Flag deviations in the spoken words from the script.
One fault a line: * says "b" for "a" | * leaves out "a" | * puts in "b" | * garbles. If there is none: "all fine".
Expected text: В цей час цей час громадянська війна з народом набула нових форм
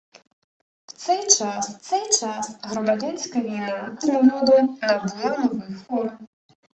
all fine